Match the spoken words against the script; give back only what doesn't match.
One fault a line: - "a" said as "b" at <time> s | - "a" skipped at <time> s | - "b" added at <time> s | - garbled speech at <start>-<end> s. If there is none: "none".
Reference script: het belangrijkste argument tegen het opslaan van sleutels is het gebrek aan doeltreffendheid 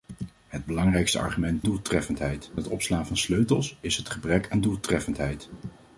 - "tegen" said as "doeltreffendheid" at 1.6 s